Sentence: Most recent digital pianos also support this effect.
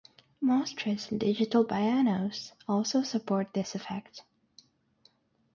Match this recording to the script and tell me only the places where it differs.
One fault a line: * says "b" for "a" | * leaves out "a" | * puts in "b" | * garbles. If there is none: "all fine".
all fine